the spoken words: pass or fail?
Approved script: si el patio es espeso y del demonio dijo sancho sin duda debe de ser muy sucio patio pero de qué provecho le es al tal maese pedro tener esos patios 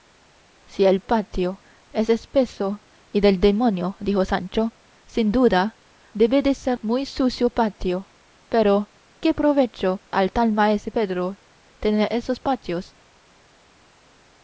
fail